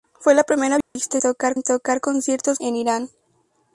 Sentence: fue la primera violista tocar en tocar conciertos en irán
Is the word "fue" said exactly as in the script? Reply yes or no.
yes